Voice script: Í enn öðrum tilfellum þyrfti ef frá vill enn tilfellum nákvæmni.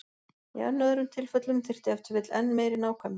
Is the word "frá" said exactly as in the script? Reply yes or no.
no